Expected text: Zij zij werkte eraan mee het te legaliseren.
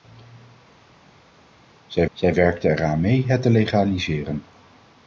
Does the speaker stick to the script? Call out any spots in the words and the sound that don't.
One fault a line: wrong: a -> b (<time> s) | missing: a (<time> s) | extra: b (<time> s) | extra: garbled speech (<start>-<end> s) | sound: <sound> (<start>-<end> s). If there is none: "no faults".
no faults